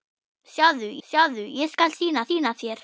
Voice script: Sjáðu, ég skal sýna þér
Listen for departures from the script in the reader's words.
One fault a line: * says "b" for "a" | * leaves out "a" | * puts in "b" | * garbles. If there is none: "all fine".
* puts in "sjáðu"
* puts in "sýna"